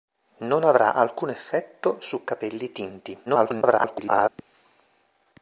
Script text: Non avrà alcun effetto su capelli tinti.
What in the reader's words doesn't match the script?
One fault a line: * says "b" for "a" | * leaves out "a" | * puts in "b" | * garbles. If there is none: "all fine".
* garbles